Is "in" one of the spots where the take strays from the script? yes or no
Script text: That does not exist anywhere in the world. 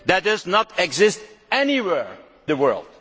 yes